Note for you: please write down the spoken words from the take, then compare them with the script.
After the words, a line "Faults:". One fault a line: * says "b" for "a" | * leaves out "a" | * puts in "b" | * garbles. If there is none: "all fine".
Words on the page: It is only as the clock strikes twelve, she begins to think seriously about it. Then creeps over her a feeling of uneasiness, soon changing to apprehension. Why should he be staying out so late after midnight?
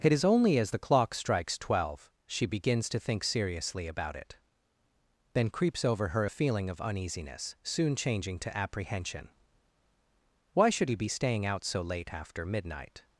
It is only as the clock strikes twelve, she begins to think seriously about it. Then creeps over her a feeling of uneasiness, soon changing to apprehension. Why should he be staying out so late after midnight?
Faults:
all fine